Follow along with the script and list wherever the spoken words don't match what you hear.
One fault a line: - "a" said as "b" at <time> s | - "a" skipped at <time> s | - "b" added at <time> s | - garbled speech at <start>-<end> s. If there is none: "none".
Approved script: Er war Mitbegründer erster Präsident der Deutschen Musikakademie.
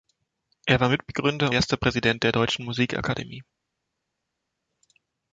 none